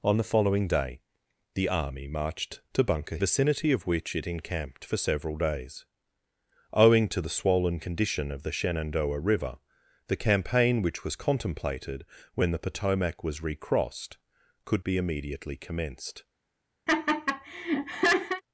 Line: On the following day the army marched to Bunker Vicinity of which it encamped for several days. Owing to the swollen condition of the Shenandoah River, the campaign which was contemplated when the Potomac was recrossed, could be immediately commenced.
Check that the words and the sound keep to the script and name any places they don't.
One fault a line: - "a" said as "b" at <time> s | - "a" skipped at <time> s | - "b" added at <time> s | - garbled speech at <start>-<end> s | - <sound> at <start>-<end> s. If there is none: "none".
- laugh at 16.9-18.4 s